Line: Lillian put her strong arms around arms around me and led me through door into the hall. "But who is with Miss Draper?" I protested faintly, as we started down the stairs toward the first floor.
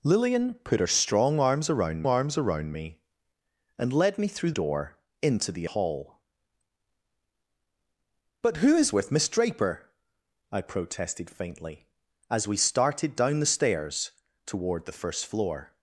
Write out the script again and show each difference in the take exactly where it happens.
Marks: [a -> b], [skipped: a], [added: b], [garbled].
Lillian put her strong arms around arms around me and led me through door into the hall. "But who is with Miss Draper?" I protested faintly, as we started down the stairs toward the first floor.